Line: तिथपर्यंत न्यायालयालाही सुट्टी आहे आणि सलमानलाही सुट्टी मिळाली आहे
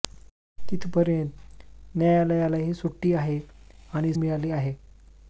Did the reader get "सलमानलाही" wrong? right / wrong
wrong